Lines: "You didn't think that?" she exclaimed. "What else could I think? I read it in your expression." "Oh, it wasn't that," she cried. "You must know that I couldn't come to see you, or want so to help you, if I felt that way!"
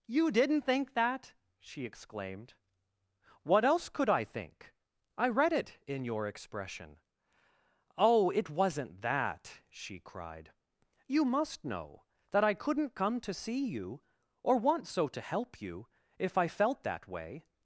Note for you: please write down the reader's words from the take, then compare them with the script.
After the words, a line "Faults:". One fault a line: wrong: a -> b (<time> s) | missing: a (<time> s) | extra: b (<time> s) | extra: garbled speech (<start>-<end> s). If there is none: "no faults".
"You didn't think that?" she exclaimed. "What else could I think? I read it in your expression." "Oh, it wasn't that," she cried. "You must know that I couldn't come to see you, or want so to help you, if I felt that way!"
Faults:
no faults